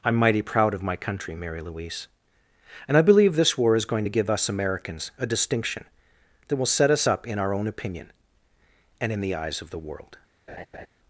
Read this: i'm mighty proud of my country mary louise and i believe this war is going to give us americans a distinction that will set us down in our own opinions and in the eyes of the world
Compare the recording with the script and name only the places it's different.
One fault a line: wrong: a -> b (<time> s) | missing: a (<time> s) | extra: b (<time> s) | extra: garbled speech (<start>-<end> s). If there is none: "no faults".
wrong: down -> up (7.1 s)
wrong: opinions -> opinion (7.7 s)